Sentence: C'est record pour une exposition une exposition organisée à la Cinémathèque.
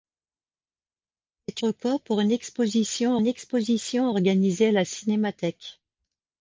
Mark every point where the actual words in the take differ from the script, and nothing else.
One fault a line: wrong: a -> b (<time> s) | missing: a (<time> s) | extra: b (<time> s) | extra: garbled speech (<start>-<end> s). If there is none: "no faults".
no faults